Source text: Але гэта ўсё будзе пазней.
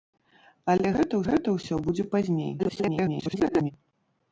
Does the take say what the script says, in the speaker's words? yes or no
no